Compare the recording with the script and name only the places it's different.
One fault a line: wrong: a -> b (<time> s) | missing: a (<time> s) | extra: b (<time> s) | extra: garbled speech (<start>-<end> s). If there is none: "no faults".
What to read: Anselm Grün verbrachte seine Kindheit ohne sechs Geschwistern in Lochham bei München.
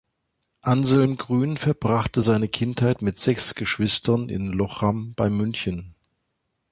wrong: ohne -> mit (3.0 s)